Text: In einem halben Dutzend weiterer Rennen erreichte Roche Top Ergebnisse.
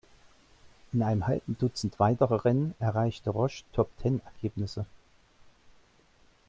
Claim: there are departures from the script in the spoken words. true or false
true